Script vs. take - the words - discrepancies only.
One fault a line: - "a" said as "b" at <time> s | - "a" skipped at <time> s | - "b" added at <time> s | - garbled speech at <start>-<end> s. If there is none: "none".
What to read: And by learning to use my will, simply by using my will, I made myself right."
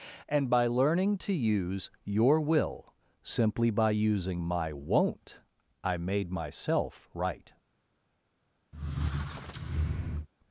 - "my" said as "your" at 2.0 s
- "will" said as "won't" at 4.7 s